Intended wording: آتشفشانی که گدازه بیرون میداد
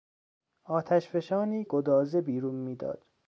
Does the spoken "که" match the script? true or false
false